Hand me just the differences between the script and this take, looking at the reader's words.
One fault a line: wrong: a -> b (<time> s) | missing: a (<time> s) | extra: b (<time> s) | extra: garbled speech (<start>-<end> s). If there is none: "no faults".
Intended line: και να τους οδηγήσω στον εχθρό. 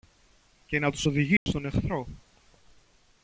no faults